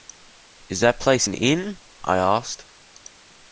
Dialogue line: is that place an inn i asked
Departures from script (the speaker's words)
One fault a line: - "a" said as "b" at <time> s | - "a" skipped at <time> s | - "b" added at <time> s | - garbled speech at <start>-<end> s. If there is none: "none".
none